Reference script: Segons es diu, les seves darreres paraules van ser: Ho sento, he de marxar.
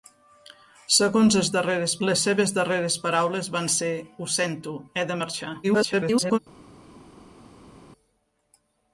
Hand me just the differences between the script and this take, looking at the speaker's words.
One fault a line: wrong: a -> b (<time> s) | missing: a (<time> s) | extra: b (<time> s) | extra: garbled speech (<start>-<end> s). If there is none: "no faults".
wrong: diu -> darreres (1.6 s)
extra: garbled speech (5.6-6.4 s)